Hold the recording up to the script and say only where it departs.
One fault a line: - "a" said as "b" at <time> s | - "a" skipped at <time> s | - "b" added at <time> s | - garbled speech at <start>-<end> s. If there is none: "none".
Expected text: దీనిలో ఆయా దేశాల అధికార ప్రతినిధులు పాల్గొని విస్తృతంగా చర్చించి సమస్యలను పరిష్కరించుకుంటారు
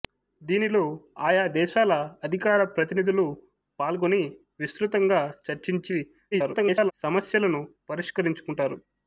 - garbled speech at 6.3-6.9 s